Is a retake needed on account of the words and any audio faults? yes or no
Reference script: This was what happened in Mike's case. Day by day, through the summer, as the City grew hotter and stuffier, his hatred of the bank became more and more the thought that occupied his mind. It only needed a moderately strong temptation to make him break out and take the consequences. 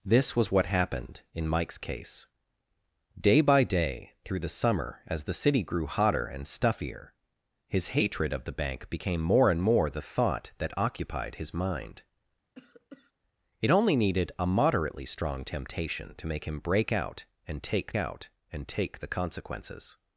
yes